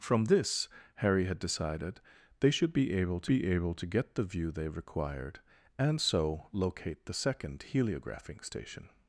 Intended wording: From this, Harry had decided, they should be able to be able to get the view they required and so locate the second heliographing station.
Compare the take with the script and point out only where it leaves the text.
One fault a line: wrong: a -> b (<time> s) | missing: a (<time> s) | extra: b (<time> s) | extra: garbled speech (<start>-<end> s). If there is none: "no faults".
no faults